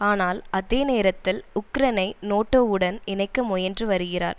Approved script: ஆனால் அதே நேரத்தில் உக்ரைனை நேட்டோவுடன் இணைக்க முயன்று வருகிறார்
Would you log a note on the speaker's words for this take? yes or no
no